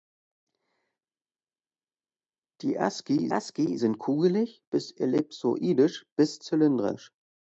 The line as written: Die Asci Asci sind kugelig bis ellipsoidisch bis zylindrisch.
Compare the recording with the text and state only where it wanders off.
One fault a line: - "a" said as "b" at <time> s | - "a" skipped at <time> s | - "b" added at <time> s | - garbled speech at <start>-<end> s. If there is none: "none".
none